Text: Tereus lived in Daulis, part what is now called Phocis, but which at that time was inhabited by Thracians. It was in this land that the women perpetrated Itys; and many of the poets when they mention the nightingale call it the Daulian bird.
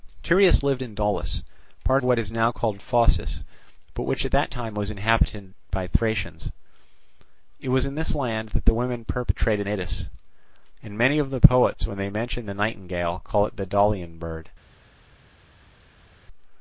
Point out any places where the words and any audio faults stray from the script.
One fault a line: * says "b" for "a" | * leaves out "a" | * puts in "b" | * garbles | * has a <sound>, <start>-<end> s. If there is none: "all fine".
all fine